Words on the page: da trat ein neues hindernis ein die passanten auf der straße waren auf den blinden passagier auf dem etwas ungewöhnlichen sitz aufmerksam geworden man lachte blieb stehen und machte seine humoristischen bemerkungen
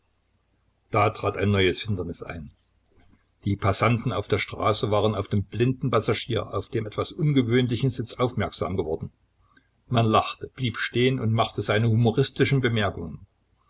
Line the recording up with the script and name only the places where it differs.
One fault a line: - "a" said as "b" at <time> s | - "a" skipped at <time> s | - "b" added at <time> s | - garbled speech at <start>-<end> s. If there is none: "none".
none